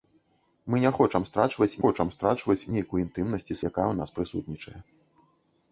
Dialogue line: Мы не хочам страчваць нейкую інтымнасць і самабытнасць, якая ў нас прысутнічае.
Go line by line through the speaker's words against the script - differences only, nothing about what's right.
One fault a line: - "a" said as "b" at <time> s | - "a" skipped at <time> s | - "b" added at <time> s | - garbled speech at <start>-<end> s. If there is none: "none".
- "хочам страчваць" added at 1.8 s
- "самабытнасць" skipped at 3.6 s